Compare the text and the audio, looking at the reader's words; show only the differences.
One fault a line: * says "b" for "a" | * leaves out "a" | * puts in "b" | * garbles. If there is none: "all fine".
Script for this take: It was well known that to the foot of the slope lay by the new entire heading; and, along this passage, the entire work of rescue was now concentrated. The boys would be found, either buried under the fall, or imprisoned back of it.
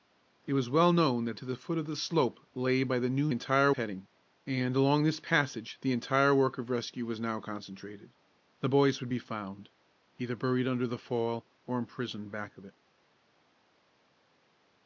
all fine